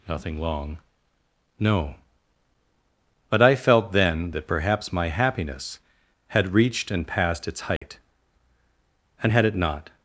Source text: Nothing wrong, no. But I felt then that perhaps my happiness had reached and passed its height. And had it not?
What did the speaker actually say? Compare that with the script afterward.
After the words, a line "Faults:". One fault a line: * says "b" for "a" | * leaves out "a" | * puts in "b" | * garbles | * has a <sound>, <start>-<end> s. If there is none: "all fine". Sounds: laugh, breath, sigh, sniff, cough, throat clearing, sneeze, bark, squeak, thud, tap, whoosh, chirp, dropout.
Nothing long, no. But I felt then that perhaps my happiness had reached and passed its height. And had it not?
Faults:
* says "long" for "wrong"
* has a dropout, 7.8-7.8 s